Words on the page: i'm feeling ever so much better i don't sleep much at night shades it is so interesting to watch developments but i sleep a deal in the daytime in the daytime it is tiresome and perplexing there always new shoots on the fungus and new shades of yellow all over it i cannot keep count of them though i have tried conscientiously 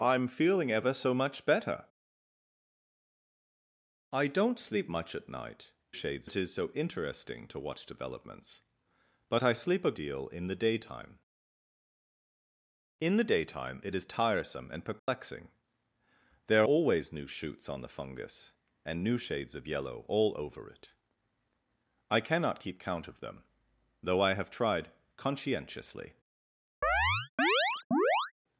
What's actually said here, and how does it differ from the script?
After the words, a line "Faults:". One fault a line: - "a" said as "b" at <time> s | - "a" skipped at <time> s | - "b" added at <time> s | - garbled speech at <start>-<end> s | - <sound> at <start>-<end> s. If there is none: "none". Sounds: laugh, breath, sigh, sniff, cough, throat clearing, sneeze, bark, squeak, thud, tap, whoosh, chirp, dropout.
i'm feeling ever so much better i don't sleep much at night shades it is so interesting to watch developments but i sleep a deal in the daytime in the daytime it is tiresome and perplexing there always new shoots on the fungus and new shades of yellow all over it i cannot keep count of them though i have tried conscientiously
Faults:
- dropout at 15.0-15.1 s
- chirp at 26.8-28.3 s